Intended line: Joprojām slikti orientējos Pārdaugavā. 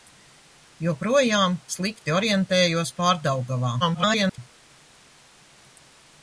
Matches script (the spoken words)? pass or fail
fail